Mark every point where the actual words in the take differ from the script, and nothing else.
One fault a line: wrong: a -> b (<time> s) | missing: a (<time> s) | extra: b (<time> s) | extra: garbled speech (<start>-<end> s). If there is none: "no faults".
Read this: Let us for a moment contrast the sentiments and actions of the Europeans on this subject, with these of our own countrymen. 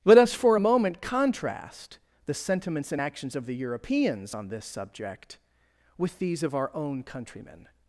no faults